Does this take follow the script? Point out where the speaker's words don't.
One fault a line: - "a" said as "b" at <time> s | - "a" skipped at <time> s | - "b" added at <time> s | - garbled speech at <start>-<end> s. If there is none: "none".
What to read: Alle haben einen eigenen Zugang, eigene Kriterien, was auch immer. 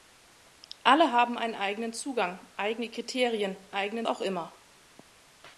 - "was" said as "eigenen" at 3.7 s